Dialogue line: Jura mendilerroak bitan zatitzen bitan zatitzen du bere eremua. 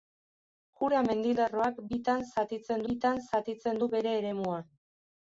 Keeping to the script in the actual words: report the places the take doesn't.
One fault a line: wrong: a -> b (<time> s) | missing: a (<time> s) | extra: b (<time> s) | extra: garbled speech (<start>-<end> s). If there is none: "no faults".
no faults